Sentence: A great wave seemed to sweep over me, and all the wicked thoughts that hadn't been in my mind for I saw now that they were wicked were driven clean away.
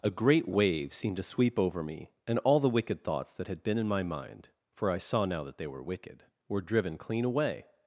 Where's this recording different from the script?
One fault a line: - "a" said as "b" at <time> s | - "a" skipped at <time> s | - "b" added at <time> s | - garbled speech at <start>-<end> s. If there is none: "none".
- "hadn't" said as "had" at 3.5 s